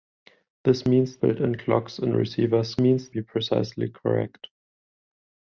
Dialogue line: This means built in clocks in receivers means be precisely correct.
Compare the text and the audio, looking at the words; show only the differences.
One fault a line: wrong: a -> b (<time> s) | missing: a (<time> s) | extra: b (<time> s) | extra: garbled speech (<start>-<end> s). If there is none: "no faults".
no faults